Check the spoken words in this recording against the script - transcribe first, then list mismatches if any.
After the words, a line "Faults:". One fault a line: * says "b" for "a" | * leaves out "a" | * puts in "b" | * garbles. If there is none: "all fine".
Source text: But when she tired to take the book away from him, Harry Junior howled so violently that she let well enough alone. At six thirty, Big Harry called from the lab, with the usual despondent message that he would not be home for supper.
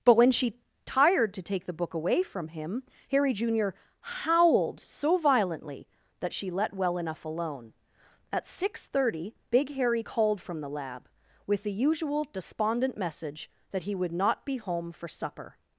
But when she tired to take the book away from him, Harry Junior howled so violently that she let well enough alone. At six thirty, Big Harry called from the lab, with the usual despondent message that he would not be home for supper.
Faults:
all fine